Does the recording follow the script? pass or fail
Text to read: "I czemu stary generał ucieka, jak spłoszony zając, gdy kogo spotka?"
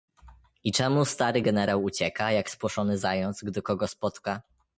pass